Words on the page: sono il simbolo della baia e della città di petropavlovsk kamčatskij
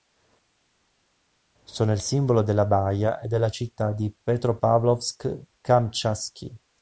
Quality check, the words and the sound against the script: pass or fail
pass